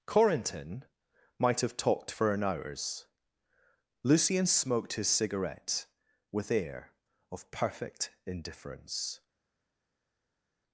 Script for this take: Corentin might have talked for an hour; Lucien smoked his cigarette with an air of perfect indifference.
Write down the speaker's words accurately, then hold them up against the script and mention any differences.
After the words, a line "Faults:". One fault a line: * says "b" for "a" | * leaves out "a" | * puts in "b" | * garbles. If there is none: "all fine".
Corentin might have talked for an hours; Lucien smoked his cigarette with air of perfect indifference.
Faults:
* says "hours" for "hour"
* leaves out "an"